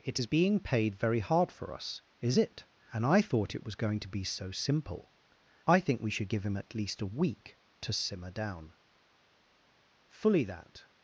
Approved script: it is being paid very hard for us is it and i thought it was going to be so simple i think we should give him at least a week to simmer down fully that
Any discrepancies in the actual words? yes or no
no